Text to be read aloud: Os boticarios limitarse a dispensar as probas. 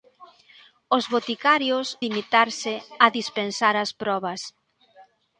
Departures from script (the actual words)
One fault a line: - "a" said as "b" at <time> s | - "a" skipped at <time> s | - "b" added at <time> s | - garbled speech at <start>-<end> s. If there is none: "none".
none